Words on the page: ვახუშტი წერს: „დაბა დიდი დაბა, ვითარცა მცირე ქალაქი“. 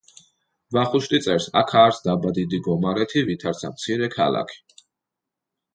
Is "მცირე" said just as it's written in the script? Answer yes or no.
yes